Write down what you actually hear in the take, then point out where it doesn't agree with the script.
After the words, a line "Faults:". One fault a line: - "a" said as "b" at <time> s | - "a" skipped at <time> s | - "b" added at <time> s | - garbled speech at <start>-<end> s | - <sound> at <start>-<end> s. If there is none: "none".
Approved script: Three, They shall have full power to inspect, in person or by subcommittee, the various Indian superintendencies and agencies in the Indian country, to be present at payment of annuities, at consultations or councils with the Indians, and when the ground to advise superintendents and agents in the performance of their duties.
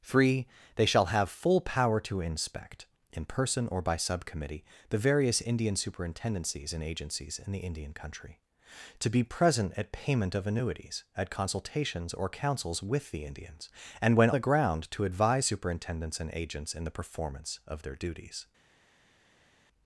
Three, They shall have full power to inspect, in person or by subcommittee, the various Indian superintendencies and agencies in the Indian country, to be present at payment of annuities, at consultations or councils with the Indians, and when the ground to advise superintendents and agents in the performance of their duties.
Faults:
none